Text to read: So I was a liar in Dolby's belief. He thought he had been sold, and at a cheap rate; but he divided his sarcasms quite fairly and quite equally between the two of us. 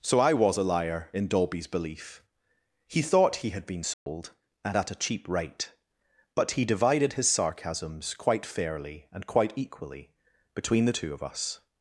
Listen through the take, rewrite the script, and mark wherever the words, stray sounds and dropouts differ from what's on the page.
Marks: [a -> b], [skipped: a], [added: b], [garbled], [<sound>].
So I was a liar in Dolby's belief. He thought he had been sold, [dropout] and at a cheap rate; but he divided his sarcasms quite fairly and quite equally between the two of us.